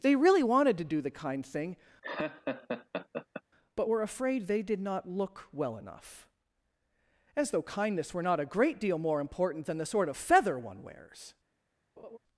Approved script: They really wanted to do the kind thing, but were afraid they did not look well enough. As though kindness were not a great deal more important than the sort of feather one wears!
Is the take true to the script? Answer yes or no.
yes